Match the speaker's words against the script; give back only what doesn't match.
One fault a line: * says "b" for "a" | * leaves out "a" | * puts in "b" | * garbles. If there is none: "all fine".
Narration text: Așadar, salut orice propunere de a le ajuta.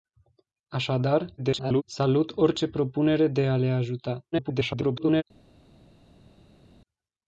* garbles
* garbles